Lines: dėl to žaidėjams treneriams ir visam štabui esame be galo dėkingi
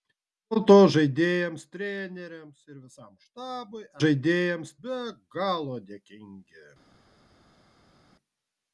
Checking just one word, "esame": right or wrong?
wrong